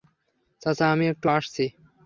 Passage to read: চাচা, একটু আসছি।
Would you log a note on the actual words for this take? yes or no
yes